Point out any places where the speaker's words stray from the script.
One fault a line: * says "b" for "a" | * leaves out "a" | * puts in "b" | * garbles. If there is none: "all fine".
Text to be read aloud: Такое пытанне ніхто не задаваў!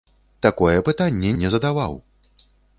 * leaves out "ніхто"